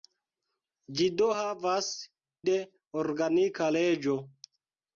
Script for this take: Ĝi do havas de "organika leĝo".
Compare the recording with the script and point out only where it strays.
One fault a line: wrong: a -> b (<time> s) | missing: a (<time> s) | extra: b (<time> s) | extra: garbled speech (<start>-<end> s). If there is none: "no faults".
no faults